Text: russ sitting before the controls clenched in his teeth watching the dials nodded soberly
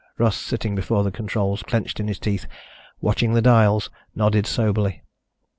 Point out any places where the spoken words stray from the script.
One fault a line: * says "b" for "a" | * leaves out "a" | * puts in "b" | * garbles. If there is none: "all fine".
all fine